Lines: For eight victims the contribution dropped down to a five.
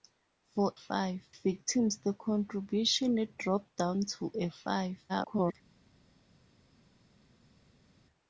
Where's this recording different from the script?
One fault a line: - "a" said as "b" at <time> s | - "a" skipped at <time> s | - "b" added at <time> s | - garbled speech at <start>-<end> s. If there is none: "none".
- "eight" said as "five" at 0.7 s
- garbled speech at 5.1-5.5 s